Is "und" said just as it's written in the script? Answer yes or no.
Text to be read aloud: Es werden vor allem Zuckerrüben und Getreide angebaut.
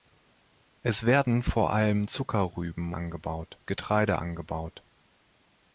no